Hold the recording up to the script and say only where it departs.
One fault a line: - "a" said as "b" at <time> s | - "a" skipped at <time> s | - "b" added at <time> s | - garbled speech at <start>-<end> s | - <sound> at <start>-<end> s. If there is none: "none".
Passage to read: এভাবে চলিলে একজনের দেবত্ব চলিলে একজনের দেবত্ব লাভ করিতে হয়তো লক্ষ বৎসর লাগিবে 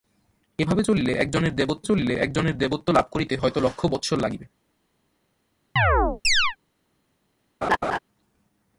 - chirp at 5.8-6.6 s
- laugh at 7.6-8.0 s